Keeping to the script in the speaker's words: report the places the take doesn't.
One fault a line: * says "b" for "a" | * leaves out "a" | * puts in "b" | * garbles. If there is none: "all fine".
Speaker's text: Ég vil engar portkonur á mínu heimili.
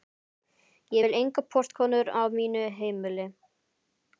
all fine